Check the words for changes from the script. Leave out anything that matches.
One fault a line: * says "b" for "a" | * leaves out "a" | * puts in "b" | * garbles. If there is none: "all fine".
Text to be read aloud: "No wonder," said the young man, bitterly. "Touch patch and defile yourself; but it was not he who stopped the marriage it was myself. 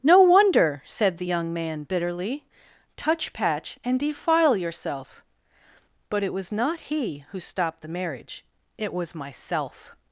all fine